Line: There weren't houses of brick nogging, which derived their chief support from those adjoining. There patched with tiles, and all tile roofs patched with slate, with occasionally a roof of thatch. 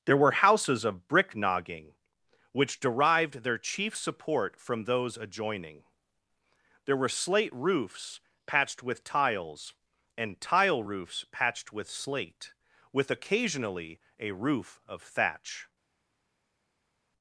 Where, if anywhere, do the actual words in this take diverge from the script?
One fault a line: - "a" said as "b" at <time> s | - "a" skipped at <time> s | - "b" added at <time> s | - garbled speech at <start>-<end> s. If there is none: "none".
- "weren't" said as "were" at 0.2 s
- "were slate roofs" added at 7.0 s
- "all" skipped at 10.4 s